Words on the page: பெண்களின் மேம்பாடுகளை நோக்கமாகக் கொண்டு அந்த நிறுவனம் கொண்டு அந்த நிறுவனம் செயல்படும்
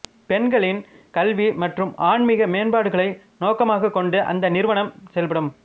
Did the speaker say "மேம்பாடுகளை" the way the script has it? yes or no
no